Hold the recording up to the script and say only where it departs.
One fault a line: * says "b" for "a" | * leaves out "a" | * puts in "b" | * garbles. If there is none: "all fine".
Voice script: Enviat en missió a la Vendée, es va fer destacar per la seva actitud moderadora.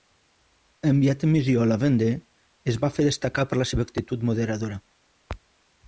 all fine